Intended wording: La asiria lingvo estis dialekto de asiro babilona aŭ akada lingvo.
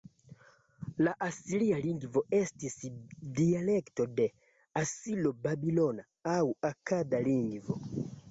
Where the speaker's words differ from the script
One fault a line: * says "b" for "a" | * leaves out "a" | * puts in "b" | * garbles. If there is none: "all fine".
all fine